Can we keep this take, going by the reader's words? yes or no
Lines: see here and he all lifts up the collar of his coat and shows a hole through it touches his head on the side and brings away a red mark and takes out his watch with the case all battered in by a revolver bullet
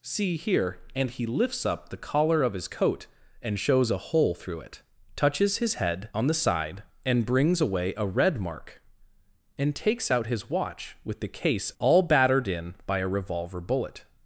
no